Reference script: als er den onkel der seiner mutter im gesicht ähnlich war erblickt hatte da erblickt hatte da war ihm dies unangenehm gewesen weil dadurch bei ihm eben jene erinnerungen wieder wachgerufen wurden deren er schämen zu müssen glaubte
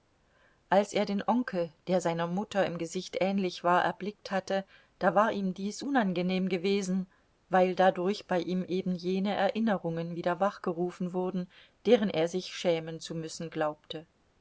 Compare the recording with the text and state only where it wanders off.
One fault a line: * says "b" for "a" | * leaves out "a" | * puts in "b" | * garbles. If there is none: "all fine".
* leaves out "erblickt hatte da"
* puts in "sich"